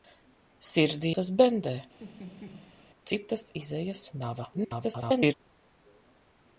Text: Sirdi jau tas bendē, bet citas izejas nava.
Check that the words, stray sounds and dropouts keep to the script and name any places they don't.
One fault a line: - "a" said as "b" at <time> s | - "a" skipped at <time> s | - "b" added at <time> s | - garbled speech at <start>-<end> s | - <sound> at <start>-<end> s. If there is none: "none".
- "jau" skipped at 1.1 s
- "bet" skipped at 1.7 s
- laugh at 2.0-2.8 s
- garbled speech at 4.5-5.3 s